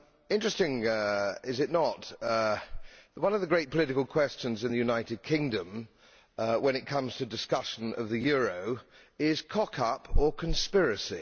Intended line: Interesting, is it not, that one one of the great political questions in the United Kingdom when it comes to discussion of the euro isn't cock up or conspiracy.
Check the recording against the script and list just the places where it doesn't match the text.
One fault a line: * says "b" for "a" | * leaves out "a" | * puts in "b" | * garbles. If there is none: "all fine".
* leaves out "one"
* says "is" for "isn't"